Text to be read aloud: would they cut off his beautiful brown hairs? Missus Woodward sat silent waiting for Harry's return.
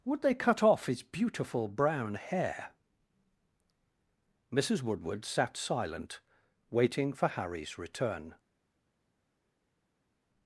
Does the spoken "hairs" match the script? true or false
false